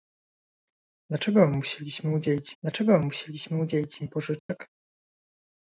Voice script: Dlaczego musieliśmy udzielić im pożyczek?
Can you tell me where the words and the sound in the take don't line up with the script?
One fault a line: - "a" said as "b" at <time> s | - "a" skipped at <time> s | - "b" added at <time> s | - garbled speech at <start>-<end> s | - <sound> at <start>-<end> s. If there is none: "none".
- "dlaczego musieliśmy udzielić" added at 2.6 s
- dropout at 4.4-4.5 s